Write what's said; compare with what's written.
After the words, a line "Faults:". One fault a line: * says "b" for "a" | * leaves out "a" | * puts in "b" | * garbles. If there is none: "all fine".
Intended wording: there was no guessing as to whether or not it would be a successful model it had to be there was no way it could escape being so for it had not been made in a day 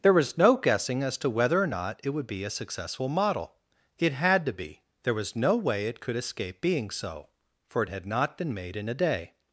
there was no guessing as to whether or not it would be a successful model it had to be there was no way it could escape being so for it had not been made in a day
Faults:
all fine